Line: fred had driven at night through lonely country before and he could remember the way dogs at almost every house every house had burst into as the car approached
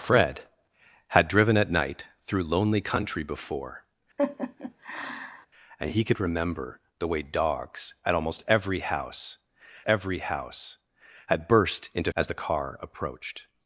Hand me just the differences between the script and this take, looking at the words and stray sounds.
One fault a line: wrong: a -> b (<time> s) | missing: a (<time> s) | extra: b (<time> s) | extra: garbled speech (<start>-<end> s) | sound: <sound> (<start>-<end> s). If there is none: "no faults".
sound: laugh (4.2-5.5 s)